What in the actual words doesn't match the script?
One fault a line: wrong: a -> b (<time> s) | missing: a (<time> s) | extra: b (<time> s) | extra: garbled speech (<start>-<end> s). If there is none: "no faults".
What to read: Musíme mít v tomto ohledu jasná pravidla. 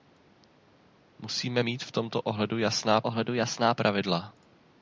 extra: ohledu jasná (3.0 s)